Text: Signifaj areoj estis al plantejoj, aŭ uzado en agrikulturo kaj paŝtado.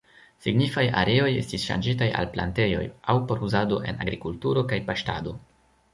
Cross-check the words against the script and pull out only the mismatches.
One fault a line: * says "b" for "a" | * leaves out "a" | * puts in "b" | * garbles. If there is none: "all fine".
* puts in "ŝanĝitaj"
* puts in "por"